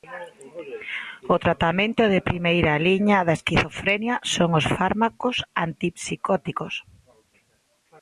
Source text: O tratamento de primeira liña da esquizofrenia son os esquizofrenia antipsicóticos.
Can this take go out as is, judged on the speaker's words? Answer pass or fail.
fail